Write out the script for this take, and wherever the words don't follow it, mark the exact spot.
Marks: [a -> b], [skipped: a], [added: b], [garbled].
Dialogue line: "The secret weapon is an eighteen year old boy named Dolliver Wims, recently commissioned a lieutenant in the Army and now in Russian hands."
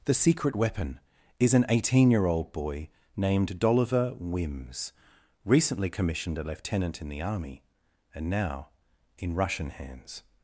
"The secret weapon is an eighteen year old boy named Dolliver Wims, recently commissioned a lieutenant in the Army and now in Russian hands."